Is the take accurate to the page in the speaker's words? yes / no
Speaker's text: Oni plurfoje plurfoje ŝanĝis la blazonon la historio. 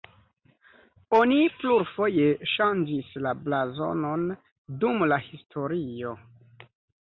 no